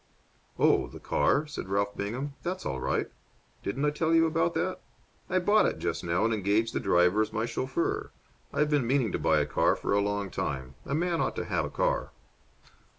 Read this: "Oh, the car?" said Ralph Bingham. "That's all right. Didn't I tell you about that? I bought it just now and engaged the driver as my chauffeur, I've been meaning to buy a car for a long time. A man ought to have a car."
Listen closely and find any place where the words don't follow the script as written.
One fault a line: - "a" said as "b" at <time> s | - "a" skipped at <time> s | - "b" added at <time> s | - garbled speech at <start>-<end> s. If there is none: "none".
none